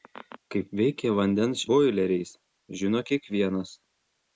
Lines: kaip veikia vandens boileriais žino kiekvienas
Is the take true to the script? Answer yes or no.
yes